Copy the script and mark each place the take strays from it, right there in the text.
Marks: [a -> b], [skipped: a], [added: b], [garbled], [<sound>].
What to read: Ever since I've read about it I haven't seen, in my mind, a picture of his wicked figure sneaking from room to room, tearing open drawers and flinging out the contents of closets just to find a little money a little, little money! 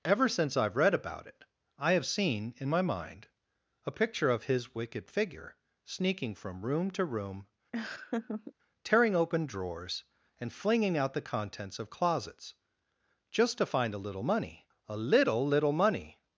Ever since I've read about it I [haven't -> have] seen, in my mind, a picture of his wicked figure sneaking from room to room, [laugh] tearing open drawers and flinging out the contents of closets just to find a little money a little, little money!